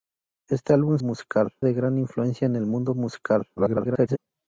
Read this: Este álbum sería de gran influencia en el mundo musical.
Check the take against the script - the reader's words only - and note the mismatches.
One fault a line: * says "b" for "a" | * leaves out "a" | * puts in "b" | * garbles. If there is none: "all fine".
* says "musical" for "sería"
* garbles